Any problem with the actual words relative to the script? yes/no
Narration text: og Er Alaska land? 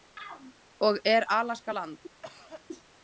no